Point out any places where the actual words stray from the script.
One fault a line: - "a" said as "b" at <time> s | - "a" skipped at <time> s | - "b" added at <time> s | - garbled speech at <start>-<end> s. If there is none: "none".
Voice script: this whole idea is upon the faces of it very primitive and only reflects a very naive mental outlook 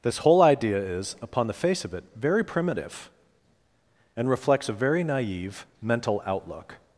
- "faces" said as "face" at 1.5 s
- "only" skipped at 4.3 s